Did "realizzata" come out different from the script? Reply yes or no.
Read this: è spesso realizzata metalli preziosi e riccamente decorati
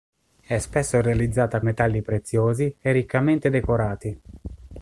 no